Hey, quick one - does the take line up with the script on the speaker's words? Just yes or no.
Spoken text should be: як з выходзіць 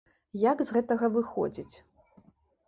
no